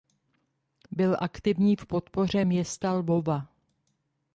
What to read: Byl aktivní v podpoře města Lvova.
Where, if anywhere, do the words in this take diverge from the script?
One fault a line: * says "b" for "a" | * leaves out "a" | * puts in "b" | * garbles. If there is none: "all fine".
all fine